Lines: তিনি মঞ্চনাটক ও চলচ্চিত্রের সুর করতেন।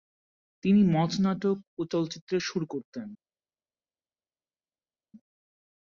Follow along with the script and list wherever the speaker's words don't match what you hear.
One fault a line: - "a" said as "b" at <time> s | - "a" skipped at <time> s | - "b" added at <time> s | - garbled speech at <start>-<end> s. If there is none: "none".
none